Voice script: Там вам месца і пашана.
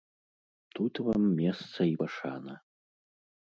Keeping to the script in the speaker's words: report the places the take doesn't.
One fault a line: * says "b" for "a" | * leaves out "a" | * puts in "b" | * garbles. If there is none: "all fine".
* says "Тут" for "Там"